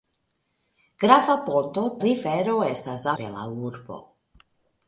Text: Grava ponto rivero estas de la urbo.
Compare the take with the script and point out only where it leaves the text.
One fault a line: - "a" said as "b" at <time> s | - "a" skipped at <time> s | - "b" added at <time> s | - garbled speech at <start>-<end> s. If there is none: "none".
none